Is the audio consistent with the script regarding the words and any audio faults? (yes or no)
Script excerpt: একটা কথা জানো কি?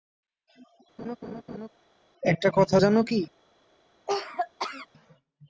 no